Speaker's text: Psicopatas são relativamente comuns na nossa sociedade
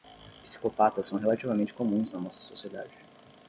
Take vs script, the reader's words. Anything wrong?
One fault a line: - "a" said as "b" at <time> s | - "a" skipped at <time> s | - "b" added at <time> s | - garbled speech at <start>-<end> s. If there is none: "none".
none